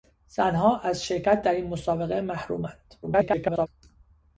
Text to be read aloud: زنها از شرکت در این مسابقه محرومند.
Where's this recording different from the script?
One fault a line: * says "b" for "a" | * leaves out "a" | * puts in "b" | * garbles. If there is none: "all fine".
* garbles